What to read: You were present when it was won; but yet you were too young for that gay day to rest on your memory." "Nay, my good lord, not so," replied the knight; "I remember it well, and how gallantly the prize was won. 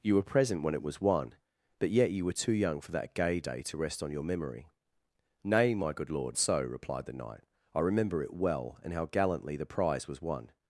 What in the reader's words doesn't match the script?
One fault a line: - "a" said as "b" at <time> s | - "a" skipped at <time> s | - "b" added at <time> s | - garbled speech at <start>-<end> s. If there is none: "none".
- "not" skipped at 6.4 s